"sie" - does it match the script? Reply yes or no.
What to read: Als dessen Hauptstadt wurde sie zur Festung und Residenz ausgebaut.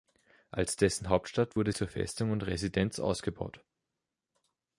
no